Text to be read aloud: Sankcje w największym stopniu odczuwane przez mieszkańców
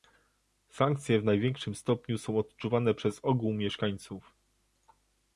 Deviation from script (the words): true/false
true